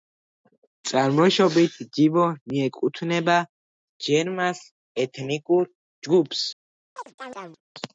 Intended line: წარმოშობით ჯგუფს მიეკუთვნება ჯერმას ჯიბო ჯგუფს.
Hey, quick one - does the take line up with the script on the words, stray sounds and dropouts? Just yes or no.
no